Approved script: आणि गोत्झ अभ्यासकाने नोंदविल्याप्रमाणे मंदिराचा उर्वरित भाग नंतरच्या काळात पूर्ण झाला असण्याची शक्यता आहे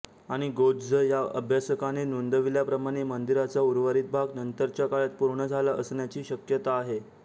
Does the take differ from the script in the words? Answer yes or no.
yes